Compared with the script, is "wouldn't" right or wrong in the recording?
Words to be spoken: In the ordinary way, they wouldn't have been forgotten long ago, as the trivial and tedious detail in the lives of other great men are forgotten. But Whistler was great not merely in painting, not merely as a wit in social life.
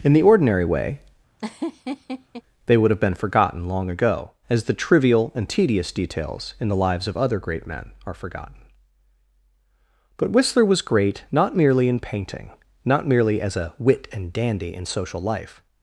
wrong